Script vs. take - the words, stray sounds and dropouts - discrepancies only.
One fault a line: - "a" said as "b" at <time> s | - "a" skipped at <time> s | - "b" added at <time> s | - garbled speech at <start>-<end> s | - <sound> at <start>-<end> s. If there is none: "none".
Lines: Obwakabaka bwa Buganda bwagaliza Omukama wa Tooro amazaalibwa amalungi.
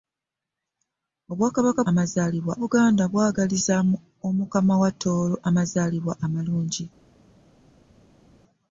- "bwa" said as "amazaalibwa" at 1.9 s